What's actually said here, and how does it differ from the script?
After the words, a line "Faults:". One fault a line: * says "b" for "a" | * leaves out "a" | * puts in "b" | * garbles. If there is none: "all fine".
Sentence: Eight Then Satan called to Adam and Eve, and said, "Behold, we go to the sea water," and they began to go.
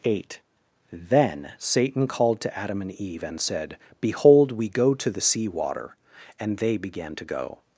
Eight Then Satan called to Adam and Eve, and said, "Behold, we go to the sea water," and they began to go.
Faults:
all fine